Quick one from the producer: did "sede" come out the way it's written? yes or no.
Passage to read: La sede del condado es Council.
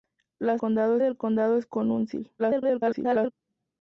no